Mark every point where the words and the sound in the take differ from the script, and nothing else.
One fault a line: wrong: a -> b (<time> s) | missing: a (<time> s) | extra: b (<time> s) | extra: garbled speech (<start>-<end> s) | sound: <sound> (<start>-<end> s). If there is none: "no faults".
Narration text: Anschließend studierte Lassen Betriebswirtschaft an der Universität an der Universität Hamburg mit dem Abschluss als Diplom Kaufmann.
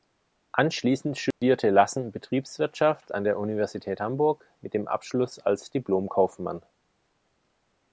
sound: dropout (1.3-1.4 s)
missing: an der Universität (4.0 s)